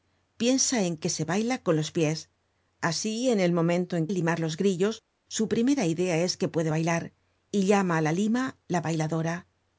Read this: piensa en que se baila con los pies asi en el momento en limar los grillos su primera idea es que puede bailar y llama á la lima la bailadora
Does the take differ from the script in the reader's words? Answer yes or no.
no